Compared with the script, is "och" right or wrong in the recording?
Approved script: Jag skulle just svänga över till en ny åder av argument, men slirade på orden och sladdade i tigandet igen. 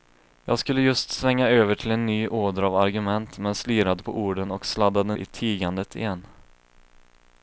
right